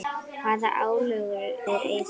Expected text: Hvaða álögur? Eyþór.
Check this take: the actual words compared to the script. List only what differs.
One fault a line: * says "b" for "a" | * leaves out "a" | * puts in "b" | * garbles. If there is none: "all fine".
all fine